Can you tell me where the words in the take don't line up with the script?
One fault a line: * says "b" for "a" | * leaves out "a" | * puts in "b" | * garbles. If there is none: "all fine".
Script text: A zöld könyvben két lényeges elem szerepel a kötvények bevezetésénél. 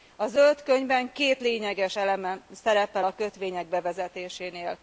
all fine